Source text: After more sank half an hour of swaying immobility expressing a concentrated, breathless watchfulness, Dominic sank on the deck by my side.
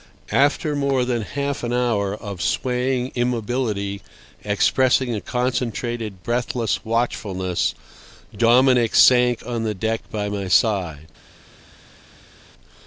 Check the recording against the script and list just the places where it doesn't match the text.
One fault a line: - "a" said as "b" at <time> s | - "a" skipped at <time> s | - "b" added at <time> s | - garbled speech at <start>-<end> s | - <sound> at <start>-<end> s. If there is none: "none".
- "sank" said as "than" at 1.1 s